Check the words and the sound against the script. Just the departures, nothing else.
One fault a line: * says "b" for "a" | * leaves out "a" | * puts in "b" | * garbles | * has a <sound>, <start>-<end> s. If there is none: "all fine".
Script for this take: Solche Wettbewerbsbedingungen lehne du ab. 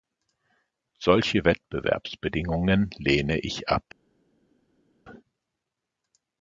* says "ich" for "du"